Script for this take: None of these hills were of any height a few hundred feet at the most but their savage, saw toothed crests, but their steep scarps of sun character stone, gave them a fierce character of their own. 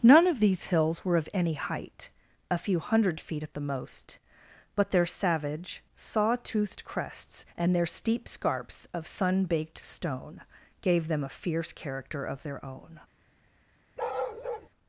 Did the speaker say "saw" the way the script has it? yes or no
yes